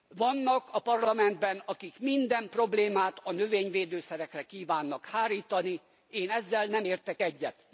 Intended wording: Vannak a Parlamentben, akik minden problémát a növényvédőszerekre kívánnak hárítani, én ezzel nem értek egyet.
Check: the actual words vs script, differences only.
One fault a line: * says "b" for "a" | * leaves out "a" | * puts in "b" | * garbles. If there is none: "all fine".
all fine